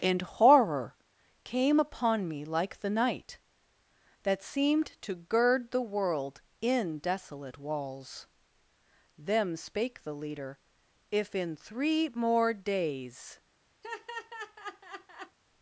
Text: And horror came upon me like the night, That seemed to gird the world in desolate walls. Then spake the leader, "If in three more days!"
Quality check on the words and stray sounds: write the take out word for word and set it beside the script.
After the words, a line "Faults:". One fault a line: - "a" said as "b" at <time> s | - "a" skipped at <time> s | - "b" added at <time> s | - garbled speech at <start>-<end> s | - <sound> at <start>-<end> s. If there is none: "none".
And horror came upon me like the night, That seemed to gird the world in desolate walls. Them spake the leader, "If in three more days!"
Faults:
- "Then" said as "Them" at 9.2 s
- laugh at 13.8-15.4 s